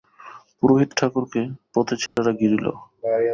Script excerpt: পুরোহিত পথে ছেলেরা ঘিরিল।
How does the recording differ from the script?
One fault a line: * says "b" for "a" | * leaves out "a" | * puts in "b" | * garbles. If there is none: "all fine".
* puts in "ঠাকুরকে"